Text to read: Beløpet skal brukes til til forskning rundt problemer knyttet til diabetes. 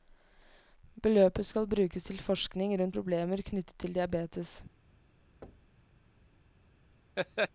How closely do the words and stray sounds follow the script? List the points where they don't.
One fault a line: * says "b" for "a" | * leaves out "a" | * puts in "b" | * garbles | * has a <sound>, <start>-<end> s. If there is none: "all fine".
* leaves out "til"
* has a thud, 5.4-5.9 s
* has a laugh, 7.2-7.5 s